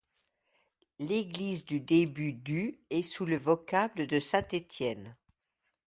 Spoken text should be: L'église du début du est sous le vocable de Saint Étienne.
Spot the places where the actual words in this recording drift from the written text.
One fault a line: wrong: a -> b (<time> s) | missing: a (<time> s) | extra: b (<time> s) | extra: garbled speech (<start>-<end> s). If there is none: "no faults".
no faults